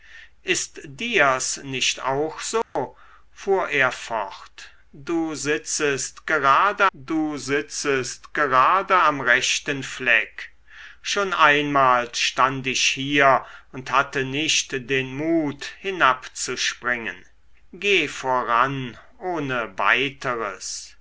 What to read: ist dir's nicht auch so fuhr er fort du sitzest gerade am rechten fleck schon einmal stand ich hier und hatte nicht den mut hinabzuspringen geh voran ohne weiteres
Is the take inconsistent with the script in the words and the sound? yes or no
yes